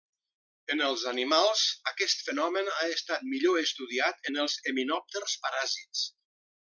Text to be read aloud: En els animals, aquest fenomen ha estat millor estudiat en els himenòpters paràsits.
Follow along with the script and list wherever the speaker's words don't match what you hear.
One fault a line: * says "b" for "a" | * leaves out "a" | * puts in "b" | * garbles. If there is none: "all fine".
all fine